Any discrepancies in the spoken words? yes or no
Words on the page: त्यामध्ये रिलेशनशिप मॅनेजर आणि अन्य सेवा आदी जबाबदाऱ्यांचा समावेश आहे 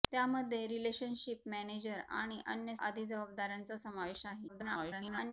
yes